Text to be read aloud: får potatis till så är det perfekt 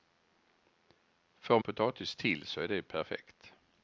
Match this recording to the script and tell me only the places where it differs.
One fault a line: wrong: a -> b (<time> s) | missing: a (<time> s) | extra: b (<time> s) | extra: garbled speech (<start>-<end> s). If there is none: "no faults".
no faults